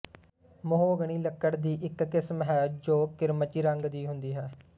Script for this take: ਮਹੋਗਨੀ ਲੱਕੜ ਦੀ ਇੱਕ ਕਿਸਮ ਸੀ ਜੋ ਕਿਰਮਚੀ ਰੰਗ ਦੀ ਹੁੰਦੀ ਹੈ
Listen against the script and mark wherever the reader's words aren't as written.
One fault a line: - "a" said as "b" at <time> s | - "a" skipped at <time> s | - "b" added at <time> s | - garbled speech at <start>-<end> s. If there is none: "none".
- "ਸੀ" said as "ਹੈ" at 2.4 s